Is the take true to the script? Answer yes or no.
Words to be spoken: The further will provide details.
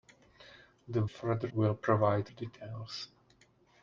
yes